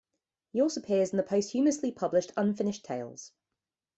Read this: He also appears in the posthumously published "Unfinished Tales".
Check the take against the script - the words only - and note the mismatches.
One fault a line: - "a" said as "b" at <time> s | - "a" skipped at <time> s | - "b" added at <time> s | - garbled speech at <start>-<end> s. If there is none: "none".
none